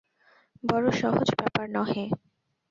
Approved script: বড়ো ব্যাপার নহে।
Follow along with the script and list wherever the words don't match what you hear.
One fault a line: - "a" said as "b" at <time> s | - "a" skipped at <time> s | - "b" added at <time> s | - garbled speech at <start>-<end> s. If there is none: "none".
- "সহজ" added at 1.0 s